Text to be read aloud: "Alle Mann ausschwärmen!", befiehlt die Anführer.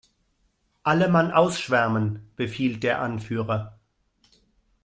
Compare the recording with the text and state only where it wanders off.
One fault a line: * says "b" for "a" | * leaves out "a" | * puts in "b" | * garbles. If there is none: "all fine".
* says "der" for "die"